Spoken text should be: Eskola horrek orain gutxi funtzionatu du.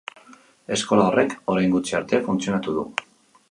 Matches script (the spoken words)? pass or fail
fail